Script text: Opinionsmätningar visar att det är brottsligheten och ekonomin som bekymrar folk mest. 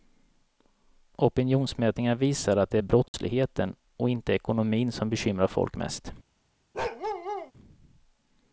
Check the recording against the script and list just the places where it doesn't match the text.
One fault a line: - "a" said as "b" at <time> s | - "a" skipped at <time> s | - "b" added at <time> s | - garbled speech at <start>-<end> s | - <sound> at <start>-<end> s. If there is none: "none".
- dropout at 3.1-3.1 s
- "inte" added at 4.1 s
- bark at 6.7-7.5 s